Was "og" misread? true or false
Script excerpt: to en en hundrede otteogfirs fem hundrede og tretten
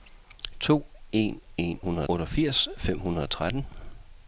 false